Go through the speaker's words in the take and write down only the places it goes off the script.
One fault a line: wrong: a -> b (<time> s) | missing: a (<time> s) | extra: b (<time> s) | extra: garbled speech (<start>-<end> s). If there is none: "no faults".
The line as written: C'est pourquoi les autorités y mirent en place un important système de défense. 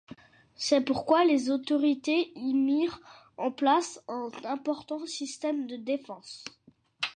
no faults